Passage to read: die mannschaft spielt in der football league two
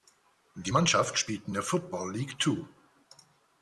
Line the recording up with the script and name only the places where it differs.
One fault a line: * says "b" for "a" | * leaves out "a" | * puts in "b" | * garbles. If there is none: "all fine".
all fine